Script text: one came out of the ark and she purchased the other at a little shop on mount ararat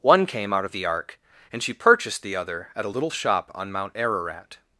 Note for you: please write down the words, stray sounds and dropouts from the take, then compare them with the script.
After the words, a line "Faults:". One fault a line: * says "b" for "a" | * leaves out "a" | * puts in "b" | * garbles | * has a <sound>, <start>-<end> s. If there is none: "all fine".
one came out of the ark and she purchased the other at a little shop on mount ararat
Faults:
all fine